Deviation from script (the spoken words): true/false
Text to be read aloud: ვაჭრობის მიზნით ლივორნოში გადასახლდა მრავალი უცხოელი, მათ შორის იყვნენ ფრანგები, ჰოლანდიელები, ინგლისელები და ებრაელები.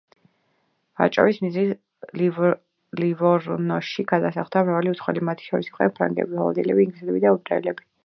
false